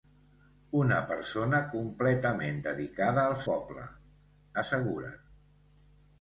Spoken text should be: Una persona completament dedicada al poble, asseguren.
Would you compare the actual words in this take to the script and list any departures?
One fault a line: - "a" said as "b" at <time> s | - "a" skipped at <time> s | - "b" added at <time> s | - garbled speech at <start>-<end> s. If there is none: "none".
none